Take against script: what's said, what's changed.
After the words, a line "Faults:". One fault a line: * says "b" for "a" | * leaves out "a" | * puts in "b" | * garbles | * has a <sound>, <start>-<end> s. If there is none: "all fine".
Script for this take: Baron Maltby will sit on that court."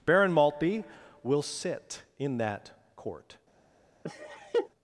Baron Maltby will sit in that court."
Faults:
* says "in" for "on"
* has a laugh, 4.0-4.7 s